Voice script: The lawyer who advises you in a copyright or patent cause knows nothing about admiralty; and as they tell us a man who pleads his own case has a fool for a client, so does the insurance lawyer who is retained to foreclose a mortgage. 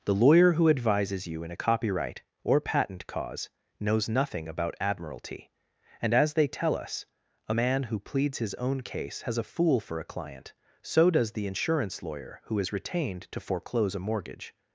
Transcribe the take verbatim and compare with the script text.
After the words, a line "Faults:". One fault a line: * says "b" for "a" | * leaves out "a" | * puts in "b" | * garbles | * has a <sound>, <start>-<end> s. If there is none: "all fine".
The lawyer who advises you in a copyright or patent cause knows nothing about admiralty; and as they tell us a man who pleads his own case has a fool for a client, so does the insurance lawyer who is retained to foreclose a mortgage.
Faults:
all fine